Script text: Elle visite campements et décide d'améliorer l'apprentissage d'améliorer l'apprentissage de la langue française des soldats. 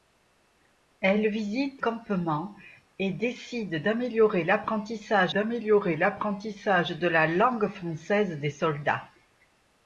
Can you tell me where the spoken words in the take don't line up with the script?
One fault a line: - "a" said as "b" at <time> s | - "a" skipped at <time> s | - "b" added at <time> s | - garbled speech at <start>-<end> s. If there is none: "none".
none